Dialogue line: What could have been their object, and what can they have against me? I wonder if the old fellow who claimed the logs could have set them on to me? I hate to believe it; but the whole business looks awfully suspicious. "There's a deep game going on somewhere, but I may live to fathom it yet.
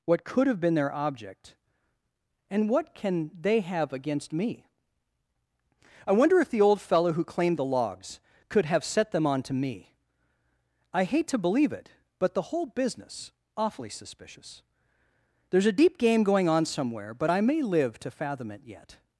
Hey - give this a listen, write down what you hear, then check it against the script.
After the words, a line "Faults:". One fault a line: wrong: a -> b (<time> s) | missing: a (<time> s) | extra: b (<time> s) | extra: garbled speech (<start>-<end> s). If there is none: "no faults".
What could have been their object, and what can they have against me? I wonder if the old fellow who claimed the logs could have set them on to me? I hate to believe it; but the whole business awfully suspicious. "There's a deep game going on somewhere, but I may live to fathom it yet.
Faults:
missing: looks (13.3 s)